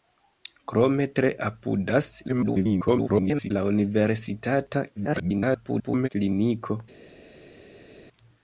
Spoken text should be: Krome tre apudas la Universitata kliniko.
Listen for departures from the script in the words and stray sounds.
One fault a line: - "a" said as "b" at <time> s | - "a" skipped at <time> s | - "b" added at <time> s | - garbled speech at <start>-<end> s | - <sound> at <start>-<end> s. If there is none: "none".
- garbled speech at 2.3-3.5 s
- garbled speech at 5.0-6.1 s